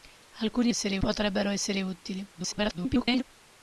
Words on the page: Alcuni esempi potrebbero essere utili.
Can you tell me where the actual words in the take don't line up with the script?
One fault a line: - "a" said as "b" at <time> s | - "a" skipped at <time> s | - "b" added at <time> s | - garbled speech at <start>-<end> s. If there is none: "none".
- "esempi" said as "essere" at 0.7 s
- garbled speech at 2.3-3.2 s